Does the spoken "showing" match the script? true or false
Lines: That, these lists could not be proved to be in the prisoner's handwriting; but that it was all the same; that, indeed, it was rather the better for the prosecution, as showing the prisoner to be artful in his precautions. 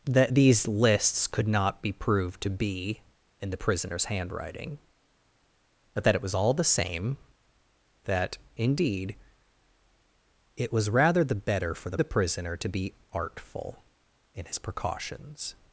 false